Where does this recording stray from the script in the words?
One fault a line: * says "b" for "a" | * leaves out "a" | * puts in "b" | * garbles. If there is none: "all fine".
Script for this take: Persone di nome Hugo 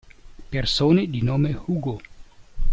all fine